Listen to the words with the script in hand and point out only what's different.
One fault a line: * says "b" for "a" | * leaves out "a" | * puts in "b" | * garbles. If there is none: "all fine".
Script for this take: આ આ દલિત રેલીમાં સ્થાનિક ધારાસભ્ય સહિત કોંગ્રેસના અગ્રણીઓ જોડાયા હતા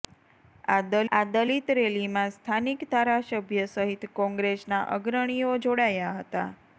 all fine